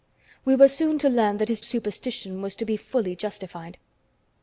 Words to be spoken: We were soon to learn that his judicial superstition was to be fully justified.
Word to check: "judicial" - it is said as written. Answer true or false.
false